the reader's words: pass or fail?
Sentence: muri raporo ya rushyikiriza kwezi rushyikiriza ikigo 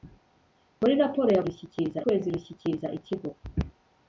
pass